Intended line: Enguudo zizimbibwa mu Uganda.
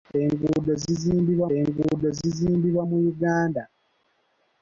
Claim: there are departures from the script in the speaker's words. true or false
true